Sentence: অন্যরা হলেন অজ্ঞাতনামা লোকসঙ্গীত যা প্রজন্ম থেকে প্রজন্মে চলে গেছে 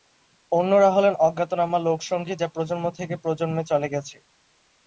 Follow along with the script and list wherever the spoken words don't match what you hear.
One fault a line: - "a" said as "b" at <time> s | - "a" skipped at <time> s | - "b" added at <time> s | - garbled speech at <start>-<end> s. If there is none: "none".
none